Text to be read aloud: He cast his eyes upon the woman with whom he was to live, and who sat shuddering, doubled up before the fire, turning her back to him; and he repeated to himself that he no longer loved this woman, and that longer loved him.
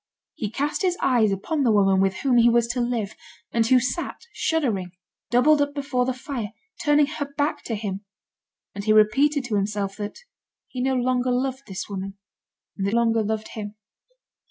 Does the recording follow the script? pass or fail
pass